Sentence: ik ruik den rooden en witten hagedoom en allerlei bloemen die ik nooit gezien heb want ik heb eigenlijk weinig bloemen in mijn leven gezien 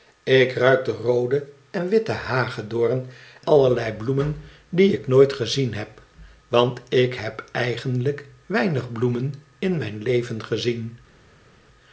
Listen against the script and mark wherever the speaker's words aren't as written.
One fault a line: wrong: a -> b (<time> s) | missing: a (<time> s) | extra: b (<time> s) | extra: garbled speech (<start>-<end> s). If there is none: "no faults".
missing: en (3.0 s)